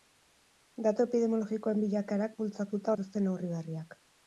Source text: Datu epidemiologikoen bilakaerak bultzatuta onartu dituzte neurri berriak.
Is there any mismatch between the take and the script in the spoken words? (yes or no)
yes